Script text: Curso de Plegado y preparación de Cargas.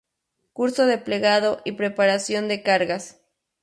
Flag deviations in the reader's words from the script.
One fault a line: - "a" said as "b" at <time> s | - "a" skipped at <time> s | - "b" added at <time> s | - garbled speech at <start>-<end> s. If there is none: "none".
none